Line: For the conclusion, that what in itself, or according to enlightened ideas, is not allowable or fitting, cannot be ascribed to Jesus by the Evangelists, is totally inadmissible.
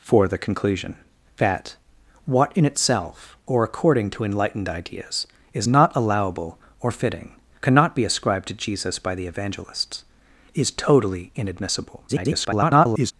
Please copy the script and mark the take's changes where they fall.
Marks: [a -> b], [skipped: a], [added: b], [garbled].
For the conclusion, that what in itself, or according to enlightened ideas, is not allowable or fitting, cannot be ascribed to Jesus by the Evangelists, is totally inadmissible. [garbled]